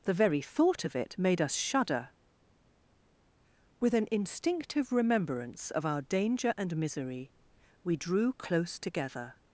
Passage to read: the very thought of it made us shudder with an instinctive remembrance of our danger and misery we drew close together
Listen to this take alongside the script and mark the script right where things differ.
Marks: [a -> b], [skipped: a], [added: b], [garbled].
the very thought of it made us shudder with an instinctive remembrance of our danger and misery we drew close together